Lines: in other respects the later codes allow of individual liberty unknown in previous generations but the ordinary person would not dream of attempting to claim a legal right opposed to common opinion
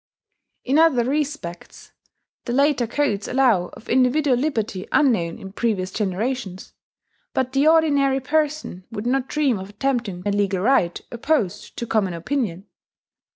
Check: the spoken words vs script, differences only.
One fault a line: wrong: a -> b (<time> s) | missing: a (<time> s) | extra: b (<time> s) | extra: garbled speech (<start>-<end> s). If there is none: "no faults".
missing: to claim (10.2 s)